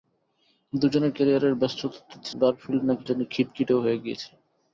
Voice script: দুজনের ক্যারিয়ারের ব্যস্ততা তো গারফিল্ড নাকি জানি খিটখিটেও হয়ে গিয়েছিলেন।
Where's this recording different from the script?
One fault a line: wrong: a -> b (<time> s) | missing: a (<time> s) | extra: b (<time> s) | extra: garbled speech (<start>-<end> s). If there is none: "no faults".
no faults